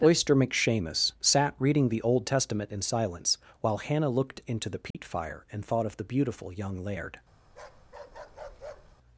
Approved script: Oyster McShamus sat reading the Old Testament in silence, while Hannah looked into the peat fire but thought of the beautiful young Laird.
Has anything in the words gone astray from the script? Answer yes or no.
yes